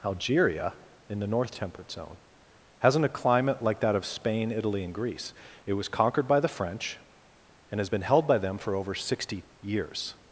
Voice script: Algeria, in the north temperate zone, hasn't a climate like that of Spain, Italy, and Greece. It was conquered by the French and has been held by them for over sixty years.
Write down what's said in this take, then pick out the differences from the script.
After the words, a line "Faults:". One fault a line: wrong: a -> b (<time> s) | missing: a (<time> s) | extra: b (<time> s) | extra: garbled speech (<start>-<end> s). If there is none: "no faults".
Algeria, in the north temperate zone, hasn't a climate like that of Spain, Italy, and Greece. It was conquered by the French and has been held by them for over sixty years.
Faults:
no faults